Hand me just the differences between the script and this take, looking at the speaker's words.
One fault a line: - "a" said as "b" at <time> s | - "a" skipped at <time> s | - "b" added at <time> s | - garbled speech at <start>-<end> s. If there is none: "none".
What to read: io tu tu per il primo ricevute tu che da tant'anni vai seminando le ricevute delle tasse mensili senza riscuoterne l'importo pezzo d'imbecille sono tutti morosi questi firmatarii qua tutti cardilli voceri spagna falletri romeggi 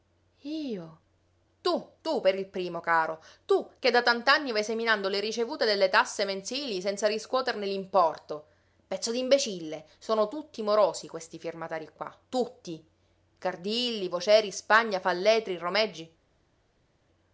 - "ricevute" said as "caro" at 2.8 s